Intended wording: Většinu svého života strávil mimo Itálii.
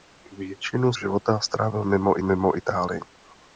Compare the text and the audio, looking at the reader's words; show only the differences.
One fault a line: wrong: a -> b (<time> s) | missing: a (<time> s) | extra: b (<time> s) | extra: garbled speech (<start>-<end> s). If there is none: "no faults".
missing: svého (0.9 s)
extra: mimo (2.2 s)